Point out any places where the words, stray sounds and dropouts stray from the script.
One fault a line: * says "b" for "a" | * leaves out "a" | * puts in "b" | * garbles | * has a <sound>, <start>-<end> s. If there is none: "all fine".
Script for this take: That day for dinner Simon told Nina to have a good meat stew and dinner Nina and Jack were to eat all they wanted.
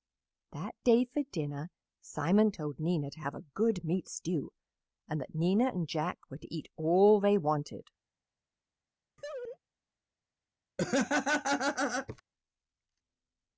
* says "that" for "dinner"
* has a laugh, 9.2-9.6 s
* has a laugh, 10.8-12.2 s